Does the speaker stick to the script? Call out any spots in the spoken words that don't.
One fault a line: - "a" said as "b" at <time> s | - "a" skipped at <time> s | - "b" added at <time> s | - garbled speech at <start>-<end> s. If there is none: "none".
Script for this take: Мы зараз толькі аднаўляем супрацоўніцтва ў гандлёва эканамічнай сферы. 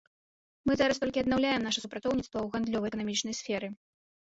- "наша" added at 1.7 s